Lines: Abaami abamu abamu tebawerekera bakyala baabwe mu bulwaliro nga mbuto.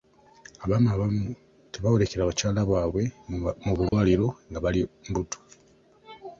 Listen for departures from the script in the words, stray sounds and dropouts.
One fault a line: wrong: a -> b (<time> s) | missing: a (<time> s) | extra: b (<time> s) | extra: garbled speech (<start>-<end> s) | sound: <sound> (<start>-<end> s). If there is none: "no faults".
missing: abamu (1.2 s)
sound: dropout (3.9-3.9 s)
extra: bali (4.6 s)